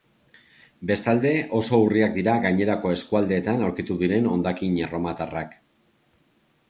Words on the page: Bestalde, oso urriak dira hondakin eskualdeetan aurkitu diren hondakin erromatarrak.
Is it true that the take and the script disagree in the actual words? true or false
true